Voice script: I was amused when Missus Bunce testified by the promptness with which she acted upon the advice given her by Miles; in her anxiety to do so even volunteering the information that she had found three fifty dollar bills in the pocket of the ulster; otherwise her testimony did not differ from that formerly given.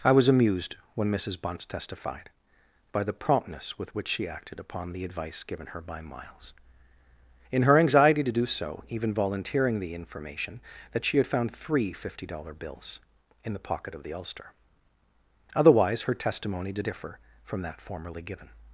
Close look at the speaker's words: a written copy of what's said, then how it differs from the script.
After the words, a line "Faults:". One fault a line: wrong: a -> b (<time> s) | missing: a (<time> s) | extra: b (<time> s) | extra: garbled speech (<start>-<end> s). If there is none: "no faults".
I was amused when Missus Bunce testified by the promptness with which she acted upon the advice given her by Miles; in her anxiety to do so even volunteering the information that she had found three fifty dollar bills in the pocket of the ulster; otherwise her testimony did differ from that formerly given.
Faults:
missing: not (16.9 s)